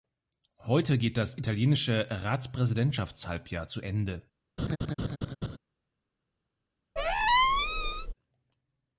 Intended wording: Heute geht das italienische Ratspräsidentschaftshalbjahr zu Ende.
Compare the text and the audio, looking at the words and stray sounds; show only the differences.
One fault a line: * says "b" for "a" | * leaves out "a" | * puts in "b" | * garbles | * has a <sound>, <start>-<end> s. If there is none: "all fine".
* has a laugh, 4.6-5.6 s
* has a squeak, 7.0-8.1 s